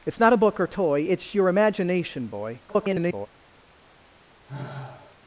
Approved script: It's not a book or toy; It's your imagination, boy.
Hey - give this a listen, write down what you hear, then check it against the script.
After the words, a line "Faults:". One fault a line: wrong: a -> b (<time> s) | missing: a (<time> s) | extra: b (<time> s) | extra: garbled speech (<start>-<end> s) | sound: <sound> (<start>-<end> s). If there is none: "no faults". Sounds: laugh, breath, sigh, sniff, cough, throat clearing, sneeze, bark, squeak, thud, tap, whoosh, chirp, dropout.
It's not a book or toy; It's your imagination, boy. [garbled]
Faults:
extra: garbled speech (2.7-3.3 s)
sound: sigh (4.5-5.2 s)